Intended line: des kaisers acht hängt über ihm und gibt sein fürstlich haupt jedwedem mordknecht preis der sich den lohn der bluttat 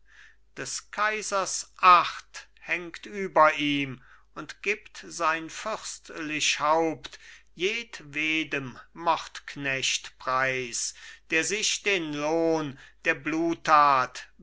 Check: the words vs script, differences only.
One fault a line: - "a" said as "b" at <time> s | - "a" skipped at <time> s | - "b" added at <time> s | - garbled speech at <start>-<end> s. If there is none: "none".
none